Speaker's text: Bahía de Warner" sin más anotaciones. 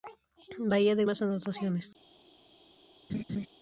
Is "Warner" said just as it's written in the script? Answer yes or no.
no